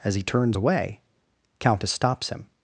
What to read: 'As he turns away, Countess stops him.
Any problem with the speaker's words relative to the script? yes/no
no